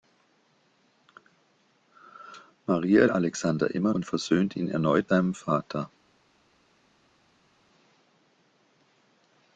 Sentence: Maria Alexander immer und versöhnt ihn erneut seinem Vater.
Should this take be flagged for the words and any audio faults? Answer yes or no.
no